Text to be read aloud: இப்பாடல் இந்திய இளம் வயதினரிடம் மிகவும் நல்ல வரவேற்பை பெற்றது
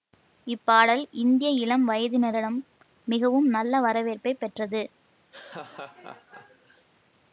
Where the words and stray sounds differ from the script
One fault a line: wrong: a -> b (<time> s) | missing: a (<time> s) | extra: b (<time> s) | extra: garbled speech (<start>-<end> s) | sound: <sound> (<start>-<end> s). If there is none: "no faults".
sound: laugh (5.3-6.9 s)